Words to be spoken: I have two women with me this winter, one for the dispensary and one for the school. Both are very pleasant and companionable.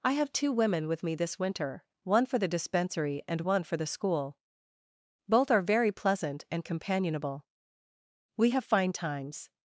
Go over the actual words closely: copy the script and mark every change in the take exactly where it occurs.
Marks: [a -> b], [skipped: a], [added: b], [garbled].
I have two women with me this winter, one for the dispensary and one for the school. Both are very pleasant and companionable. [added: We have fine times]